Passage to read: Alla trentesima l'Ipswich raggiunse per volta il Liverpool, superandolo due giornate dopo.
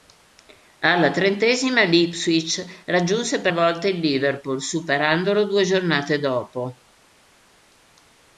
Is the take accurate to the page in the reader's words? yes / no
yes